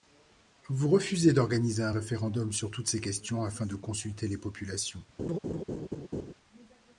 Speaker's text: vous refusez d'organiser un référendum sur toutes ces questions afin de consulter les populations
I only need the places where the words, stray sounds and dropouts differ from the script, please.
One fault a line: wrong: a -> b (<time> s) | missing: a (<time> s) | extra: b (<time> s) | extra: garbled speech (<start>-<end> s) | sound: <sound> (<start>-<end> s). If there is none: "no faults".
sound: laugh (5.2-6.3 s)